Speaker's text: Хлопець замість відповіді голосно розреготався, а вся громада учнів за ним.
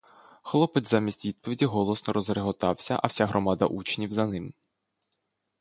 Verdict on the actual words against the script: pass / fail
pass